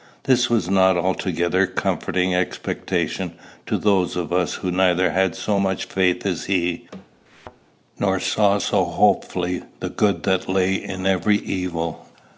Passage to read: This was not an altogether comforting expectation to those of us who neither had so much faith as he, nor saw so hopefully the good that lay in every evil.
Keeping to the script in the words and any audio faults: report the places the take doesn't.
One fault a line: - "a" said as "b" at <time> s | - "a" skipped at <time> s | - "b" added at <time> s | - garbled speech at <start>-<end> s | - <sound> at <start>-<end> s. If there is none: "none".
- thud at 7.3-7.6 s